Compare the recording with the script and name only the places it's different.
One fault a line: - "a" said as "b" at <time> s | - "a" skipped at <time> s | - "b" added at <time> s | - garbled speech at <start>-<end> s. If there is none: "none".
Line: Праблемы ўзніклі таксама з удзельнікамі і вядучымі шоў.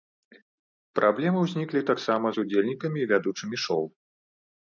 none